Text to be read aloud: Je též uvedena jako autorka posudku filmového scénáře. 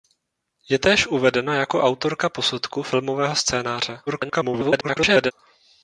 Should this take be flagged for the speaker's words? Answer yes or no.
yes